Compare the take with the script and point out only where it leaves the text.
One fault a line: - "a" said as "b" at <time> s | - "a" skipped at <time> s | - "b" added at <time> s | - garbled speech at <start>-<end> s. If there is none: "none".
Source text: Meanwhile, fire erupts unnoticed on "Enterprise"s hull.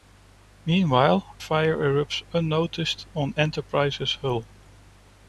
none